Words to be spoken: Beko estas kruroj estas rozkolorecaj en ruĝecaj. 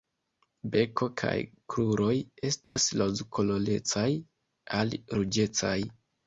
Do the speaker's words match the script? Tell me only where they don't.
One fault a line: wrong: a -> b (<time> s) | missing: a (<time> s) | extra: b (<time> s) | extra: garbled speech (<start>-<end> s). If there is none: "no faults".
wrong: estas -> kaj (1.2 s)
wrong: en -> al (4.8 s)